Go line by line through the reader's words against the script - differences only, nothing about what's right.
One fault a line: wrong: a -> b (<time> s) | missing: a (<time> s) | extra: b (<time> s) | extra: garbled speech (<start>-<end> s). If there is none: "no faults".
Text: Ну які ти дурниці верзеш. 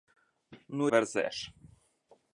missing: які ти дурниці (0.9 s)